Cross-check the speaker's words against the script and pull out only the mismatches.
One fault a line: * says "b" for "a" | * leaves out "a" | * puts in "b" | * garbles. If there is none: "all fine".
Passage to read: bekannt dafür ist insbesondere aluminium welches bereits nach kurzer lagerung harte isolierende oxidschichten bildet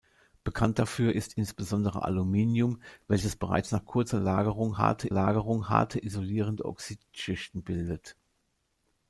* puts in "lagerung harte"